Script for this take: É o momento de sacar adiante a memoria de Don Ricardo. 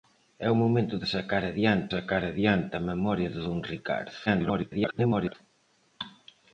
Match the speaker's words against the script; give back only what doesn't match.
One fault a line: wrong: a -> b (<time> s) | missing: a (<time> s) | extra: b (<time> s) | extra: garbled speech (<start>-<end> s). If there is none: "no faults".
extra: sacar adiante (1.9 s)
extra: garbled speech (4.3-5.4 s)